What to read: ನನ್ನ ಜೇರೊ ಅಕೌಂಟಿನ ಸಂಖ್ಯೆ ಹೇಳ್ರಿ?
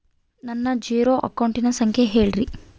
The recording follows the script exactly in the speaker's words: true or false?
true